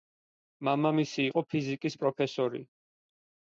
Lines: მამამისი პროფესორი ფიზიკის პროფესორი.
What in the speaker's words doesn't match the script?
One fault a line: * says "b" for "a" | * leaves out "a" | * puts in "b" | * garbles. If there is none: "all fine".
* says "იყო" for "პროფესორი"